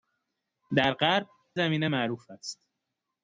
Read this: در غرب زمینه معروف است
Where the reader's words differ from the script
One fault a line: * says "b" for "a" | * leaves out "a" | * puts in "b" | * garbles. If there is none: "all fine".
all fine